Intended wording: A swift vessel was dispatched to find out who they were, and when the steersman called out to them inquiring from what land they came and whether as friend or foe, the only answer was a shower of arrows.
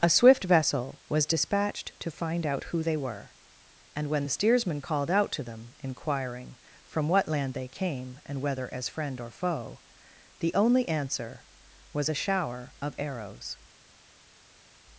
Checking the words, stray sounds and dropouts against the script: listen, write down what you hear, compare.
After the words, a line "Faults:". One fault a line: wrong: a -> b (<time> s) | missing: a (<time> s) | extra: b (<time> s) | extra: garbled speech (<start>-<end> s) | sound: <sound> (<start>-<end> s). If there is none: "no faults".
A swift vessel was dispatched to find out who they were, and when the steersman called out to them inquiring from what land they came and whether as friend or foe, the only answer was a shower of arrows.
Faults:
no faults